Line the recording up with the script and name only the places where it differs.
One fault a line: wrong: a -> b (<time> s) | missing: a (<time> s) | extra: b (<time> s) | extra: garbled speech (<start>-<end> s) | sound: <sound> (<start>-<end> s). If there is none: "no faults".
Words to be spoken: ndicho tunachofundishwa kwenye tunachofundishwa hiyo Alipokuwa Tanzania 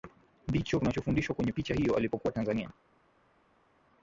wrong: tunachofundishwa -> picha (1.5 s)